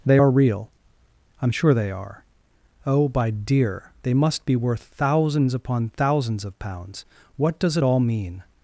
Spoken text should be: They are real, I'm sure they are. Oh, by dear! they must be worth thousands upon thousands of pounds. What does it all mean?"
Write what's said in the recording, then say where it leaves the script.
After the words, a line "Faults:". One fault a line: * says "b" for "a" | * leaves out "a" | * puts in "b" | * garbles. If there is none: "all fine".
They are real, I'm sure they are. Oh, by dear! they must be worth thousands upon thousands of pounds. What does it all mean?"
Faults:
all fine